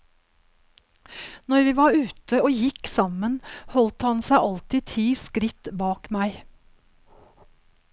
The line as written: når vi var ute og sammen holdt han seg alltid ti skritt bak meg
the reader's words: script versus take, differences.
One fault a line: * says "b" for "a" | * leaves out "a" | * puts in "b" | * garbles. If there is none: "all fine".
* puts in "gikk"